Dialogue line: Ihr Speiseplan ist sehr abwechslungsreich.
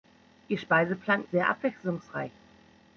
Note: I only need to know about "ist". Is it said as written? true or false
false